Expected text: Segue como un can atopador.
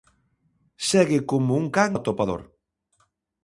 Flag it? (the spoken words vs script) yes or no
no